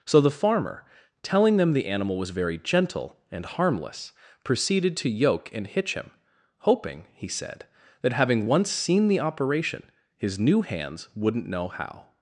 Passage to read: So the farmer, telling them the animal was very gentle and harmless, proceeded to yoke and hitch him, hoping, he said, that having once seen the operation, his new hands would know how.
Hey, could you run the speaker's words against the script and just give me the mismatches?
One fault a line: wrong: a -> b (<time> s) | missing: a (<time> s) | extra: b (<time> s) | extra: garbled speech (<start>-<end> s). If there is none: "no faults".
wrong: would -> wouldn't (11.2 s)